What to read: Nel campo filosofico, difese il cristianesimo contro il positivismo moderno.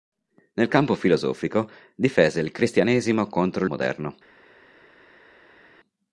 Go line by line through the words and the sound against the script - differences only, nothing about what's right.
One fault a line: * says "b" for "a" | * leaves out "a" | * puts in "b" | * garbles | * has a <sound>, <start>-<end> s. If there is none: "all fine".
* leaves out "il positivismo"